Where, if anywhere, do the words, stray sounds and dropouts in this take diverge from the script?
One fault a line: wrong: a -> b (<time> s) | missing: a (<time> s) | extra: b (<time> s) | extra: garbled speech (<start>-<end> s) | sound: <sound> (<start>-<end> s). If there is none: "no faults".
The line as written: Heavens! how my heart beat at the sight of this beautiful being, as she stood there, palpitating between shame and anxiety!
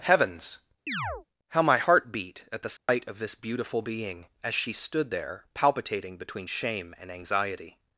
sound: chirp (0.9-1.3 s)
sound: dropout (2.8-2.9 s)